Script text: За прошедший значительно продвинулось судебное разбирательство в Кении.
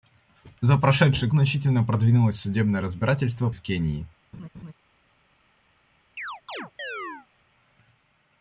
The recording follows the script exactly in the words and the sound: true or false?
false